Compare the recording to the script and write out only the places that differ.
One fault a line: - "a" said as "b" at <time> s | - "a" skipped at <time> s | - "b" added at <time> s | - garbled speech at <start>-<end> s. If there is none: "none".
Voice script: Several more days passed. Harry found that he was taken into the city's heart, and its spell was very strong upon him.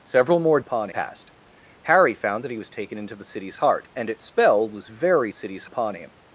- "days" said as "upon" at 0.6 s
- "strong" said as "city's" at 5.3 s